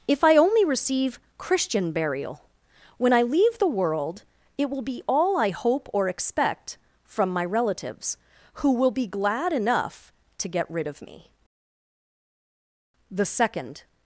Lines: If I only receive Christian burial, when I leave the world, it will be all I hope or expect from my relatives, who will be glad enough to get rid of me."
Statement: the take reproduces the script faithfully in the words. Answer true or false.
false